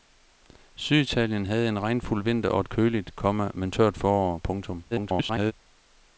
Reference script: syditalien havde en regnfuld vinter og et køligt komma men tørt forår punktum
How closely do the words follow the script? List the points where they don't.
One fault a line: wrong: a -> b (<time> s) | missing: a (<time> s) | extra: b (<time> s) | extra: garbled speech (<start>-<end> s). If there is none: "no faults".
extra: garbled speech (4.9-5.5 s)